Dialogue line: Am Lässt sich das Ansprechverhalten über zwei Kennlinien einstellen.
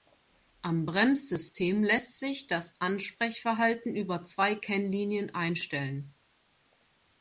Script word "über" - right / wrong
right